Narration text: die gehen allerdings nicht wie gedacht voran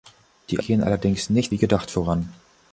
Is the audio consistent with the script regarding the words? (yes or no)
yes